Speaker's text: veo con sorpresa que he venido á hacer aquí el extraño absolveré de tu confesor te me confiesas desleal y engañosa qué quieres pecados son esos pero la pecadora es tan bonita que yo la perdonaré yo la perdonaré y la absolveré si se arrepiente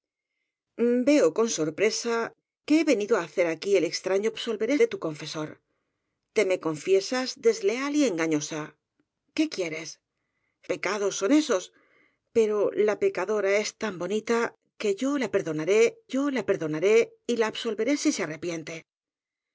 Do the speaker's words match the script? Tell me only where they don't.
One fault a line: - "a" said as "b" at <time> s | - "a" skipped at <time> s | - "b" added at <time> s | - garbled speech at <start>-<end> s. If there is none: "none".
none